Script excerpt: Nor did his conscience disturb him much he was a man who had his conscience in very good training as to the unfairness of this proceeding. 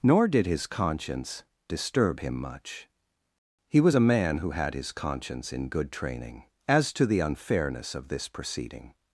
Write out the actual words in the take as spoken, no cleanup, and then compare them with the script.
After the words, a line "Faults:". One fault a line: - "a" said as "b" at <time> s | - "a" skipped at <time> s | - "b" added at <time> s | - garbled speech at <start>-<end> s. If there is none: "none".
Nor did his conscience disturb him much he was a man who had his conscience in good training as to the unfairness of this proceeding.
Faults:
- "very" skipped at 5.7 s